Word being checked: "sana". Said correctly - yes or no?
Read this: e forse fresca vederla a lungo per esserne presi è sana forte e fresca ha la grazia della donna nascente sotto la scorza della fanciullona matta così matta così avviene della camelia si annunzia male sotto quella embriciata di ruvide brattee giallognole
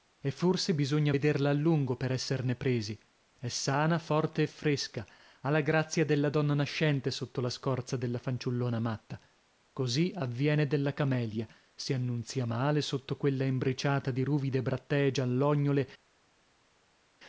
yes